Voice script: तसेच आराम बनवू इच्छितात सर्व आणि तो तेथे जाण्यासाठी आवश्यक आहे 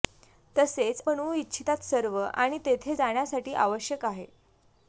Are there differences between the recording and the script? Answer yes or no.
yes